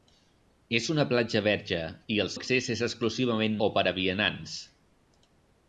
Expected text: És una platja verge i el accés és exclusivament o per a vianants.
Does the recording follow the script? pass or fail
pass